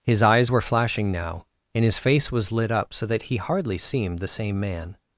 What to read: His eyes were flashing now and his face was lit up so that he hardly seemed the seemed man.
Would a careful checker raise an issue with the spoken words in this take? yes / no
yes